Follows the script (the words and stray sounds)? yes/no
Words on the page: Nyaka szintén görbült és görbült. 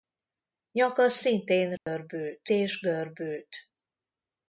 no